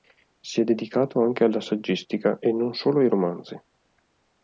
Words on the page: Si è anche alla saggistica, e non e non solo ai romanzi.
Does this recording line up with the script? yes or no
no